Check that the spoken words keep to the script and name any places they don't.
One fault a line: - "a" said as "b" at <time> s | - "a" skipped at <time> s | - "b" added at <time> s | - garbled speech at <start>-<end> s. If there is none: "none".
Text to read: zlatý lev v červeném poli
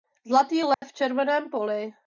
none